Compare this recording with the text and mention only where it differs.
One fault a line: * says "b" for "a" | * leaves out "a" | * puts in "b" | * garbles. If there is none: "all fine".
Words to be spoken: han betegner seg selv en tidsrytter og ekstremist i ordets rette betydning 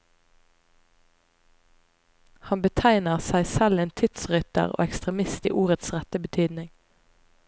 all fine